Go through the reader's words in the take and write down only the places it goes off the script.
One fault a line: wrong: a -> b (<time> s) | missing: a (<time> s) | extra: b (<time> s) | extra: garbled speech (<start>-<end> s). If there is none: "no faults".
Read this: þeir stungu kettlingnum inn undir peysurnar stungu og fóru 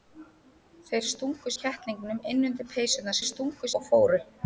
no faults